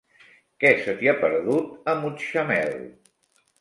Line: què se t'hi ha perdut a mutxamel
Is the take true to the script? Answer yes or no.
yes